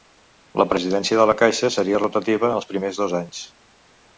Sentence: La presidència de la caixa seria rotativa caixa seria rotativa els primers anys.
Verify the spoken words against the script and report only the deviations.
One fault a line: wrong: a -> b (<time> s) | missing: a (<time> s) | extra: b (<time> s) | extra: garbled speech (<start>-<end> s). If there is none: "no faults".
missing: caixa seria rotativa (2.5 s)
extra: dos (3.0 s)